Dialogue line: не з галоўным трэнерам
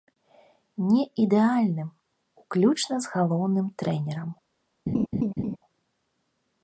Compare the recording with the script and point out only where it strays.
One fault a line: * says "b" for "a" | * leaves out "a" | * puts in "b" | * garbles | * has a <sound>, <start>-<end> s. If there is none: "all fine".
* puts in "ідэальным уключна"
* has a laugh, 4.9-5.6 s